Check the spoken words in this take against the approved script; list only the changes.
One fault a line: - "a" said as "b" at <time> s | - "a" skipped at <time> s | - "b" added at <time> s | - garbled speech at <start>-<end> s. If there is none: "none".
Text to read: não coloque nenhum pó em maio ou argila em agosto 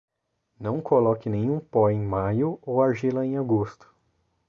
none